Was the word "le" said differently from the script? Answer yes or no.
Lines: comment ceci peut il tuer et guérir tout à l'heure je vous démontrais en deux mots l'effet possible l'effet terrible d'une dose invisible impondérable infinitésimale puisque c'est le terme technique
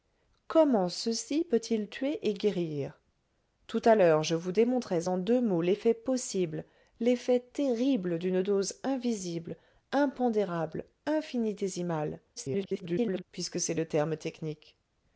no